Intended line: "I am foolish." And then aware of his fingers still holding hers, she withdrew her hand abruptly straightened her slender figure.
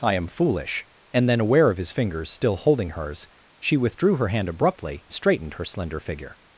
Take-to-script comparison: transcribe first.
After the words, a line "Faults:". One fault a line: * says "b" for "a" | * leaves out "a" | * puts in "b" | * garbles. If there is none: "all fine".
"I am foolish." And then aware of his fingers still holding hers, she withdrew her hand abruptly straightened her slender figure.
Faults:
all fine